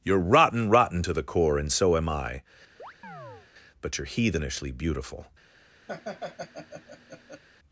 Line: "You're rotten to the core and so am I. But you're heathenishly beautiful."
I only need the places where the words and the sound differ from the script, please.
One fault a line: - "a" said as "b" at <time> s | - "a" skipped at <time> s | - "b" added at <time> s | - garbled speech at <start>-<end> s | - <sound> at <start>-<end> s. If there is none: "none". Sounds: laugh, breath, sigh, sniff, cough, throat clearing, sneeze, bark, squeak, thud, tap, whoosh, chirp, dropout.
- "rotten" added at 0.7 s
- chirp at 2.8-3.5 s
- laugh at 5.9-7.4 s